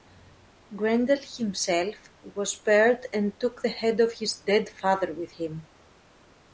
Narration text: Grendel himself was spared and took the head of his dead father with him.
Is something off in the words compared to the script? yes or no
no